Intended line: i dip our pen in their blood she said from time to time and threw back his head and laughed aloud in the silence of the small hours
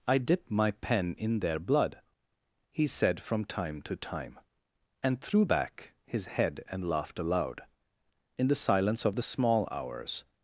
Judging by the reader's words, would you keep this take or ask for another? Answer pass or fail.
fail